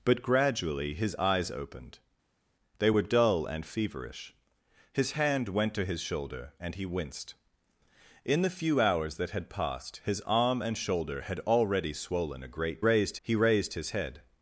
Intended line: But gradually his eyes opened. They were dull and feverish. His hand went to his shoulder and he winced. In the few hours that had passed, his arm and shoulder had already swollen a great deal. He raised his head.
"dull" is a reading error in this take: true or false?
false